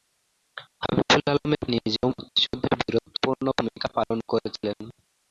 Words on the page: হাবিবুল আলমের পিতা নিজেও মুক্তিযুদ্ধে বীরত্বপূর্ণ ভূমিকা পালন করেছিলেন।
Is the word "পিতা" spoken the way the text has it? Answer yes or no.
no